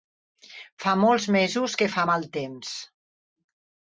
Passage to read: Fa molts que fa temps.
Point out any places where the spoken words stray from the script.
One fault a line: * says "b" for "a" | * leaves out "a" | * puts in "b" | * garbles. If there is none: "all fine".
* puts in "mesos"
* puts in "mal"